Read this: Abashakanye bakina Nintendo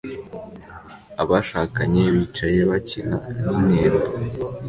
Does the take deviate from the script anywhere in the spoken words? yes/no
yes